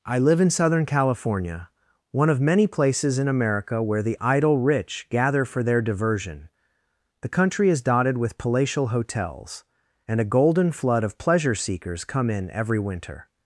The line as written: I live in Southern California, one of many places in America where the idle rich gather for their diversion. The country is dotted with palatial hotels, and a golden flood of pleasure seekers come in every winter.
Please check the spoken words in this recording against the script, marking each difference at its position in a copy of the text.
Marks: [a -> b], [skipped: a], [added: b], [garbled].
I live in Southern California, one of many places in America where the idle rich gather for their diversion. The country is dotted with palatial hotels, and a golden flood of pleasure seekers come in every winter.